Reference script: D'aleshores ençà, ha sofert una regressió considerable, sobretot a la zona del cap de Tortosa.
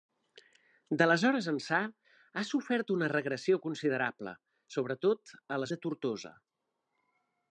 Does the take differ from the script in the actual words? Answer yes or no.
yes